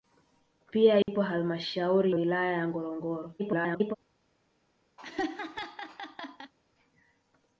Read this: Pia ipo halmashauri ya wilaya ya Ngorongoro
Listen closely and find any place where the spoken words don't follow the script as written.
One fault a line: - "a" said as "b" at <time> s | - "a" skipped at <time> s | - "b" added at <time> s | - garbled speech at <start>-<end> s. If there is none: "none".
- "ya" skipped at 2.1 s
- garbled speech at 3.4-4.0 s